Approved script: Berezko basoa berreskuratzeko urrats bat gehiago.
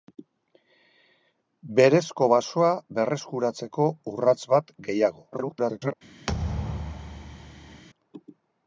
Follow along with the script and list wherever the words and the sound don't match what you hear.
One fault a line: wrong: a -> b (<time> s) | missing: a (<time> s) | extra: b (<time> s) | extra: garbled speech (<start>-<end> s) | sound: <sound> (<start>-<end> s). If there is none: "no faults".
extra: garbled speech (5.3-5.9 s)
sound: thud (6.3-7.8 s)